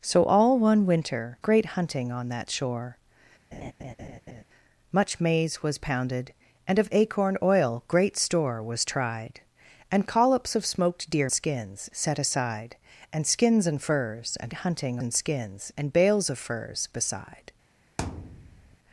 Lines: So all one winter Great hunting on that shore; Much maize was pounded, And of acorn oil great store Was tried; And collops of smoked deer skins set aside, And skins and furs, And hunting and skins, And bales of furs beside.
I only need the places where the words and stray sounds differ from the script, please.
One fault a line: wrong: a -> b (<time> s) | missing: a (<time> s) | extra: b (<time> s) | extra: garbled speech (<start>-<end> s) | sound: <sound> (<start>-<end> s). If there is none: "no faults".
sound: laugh (3.5-4.4 s)
sound: thud (18.0-18.8 s)